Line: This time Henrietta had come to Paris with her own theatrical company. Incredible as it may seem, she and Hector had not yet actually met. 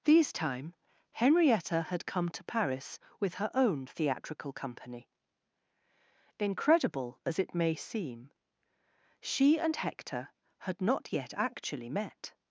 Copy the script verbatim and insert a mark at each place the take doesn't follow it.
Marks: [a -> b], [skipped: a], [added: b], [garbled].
[This -> These] time Henrietta had come to Paris with her own theatrical company. Incredible as it may seem, she and Hector had not yet actually met.